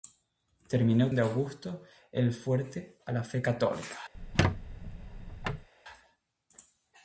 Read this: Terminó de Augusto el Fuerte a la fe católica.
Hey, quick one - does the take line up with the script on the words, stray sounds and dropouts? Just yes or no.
no